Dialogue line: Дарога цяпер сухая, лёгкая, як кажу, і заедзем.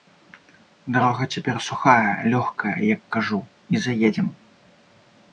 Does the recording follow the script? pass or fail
pass